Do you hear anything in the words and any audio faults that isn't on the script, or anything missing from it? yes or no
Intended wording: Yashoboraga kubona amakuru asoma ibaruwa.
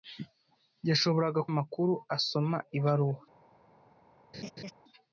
yes